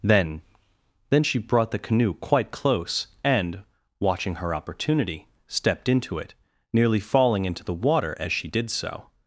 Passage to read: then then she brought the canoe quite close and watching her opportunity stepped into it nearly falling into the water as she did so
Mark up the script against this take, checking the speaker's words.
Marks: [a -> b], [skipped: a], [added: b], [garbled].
then then she brought the canoe quite close and watching her opportunity stepped into it nearly falling into the water as she did so